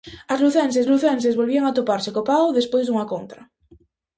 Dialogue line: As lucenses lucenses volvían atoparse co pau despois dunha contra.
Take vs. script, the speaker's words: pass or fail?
pass